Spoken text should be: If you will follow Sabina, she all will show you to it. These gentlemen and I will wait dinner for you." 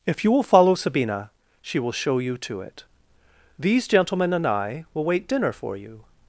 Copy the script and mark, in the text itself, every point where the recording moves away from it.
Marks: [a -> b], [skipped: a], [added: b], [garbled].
If you will follow Sabina, she [skipped: all] will show you to it. These gentlemen and I will wait dinner for you."